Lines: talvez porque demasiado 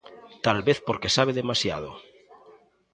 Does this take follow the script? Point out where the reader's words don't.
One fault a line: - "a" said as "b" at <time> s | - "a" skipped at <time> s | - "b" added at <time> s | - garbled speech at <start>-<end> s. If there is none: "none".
- "sabe" added at 1.1 s